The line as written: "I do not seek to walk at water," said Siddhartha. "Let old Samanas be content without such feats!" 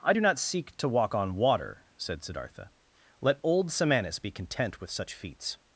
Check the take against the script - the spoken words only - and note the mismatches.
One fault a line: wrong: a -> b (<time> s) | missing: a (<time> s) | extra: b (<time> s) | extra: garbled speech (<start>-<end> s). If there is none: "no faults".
wrong: at -> on (1.1 s)
wrong: without -> with (4.8 s)